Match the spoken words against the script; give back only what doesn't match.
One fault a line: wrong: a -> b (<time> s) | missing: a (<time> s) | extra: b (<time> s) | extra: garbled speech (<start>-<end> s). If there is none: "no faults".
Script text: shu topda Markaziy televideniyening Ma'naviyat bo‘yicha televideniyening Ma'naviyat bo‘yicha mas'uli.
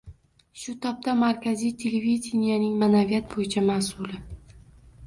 missing: televideniyening Ma'naviyat bo‘yicha (3.7 s)